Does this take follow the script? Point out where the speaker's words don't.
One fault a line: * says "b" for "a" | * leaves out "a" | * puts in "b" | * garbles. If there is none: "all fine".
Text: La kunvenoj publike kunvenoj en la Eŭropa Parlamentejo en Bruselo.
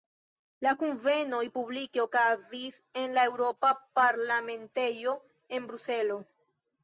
* says "okazis" for "kunvenoj"